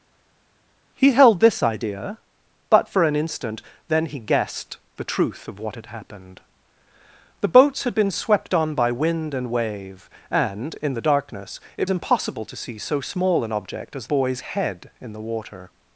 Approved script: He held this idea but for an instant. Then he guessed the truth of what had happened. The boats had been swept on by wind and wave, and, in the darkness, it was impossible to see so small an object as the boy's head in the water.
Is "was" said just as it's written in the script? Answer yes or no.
no